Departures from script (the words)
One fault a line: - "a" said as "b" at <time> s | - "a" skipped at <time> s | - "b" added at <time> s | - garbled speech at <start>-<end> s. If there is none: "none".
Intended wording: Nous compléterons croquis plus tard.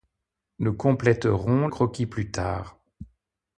none